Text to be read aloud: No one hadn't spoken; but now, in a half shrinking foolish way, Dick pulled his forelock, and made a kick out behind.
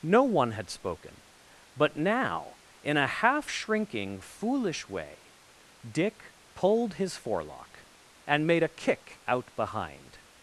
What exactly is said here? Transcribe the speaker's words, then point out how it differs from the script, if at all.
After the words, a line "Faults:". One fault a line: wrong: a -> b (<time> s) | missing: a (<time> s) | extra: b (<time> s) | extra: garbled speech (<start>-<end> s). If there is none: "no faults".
No one had spoken; but now, in a half shrinking foolish way, Dick pulled his forelock, and made a kick out behind.
Faults:
wrong: hadn't -> had (0.5 s)